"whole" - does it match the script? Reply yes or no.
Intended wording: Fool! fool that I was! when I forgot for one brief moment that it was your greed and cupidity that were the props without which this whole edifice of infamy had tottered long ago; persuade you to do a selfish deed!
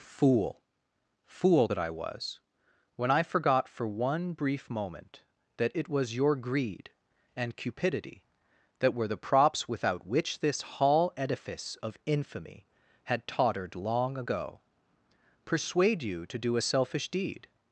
no